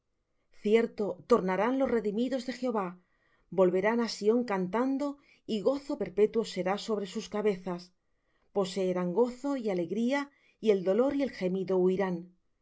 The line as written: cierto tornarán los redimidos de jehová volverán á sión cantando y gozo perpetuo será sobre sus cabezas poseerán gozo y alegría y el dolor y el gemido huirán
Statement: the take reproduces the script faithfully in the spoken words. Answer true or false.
true